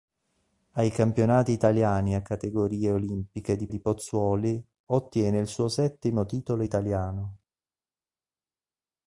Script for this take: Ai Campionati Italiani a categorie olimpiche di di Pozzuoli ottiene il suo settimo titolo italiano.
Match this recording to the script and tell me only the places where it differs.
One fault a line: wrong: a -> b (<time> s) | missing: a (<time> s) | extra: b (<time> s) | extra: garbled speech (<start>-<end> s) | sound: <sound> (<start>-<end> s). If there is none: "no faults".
no faults